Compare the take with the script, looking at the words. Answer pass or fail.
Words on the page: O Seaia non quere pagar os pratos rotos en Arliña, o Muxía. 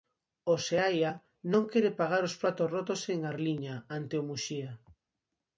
fail